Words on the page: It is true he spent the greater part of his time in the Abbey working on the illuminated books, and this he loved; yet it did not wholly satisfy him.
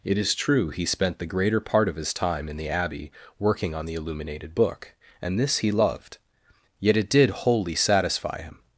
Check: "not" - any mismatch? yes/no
yes